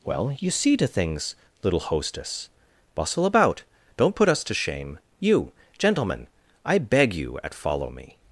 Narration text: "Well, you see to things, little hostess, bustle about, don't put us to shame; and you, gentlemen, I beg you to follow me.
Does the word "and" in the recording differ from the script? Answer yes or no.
yes